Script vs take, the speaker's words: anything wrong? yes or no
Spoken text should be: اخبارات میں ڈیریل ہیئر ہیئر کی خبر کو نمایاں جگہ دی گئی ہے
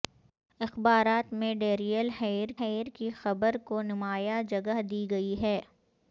no